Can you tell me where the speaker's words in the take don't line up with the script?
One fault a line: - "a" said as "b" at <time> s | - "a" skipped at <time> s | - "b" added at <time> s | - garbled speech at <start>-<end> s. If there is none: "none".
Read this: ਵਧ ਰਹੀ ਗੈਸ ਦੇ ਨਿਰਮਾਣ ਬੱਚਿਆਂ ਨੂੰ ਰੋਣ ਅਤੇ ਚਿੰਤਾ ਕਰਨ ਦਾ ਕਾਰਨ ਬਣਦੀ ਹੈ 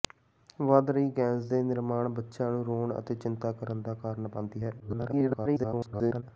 - garbled speech at 4.8-6.2 s